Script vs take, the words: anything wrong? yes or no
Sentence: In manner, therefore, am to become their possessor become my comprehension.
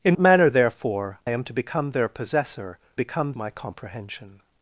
no